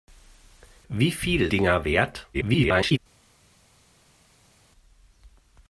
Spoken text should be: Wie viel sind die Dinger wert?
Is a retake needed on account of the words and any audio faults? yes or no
yes